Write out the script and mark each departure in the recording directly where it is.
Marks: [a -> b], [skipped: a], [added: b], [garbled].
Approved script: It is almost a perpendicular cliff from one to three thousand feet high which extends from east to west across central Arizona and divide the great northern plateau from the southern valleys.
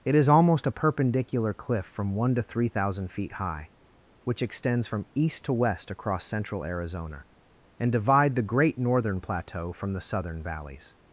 It is almost a perpendicular cliff from one to three thousand feet high which extends from east to west across central Arizona and divide the great northern plateau from the southern valleys.